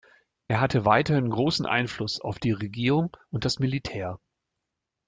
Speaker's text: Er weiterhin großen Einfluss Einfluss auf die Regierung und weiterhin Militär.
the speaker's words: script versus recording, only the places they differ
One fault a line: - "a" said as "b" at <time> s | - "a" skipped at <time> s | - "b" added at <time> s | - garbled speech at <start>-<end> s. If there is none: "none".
- "hatte" added at 0.6 s
- "Einfluss" skipped at 2.2 s
- "weiterhin" said as "das" at 3.5 s